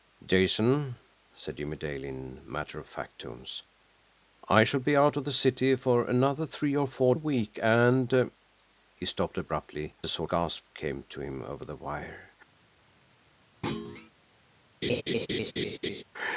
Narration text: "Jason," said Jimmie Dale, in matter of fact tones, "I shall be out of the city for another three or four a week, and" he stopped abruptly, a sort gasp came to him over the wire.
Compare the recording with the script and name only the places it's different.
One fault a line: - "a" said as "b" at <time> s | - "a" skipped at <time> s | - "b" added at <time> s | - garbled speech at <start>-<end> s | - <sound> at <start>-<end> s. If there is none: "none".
- thud at 13.6-14.1 s
- laugh at 14.8-16.0 s